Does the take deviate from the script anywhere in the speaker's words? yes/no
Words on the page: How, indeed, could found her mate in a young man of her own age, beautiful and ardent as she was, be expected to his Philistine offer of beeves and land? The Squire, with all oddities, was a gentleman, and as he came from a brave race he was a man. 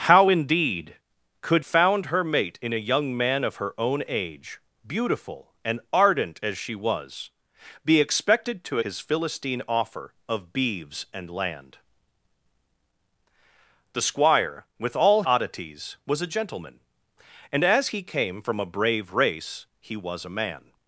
no